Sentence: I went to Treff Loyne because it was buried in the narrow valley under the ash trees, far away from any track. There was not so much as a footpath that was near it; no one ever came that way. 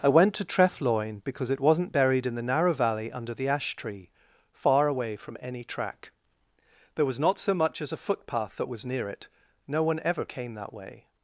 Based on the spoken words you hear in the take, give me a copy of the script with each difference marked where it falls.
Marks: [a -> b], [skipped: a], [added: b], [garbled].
I went to Treff Loyne because it [was -> wasn't] buried in the narrow valley under the ash [trees, -> tree] far away from any track. There was not so much as a footpath that was near it; no one ever came that way.